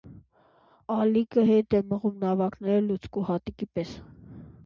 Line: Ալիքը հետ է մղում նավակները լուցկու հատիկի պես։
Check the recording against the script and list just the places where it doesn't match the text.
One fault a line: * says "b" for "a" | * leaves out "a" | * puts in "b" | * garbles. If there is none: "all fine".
all fine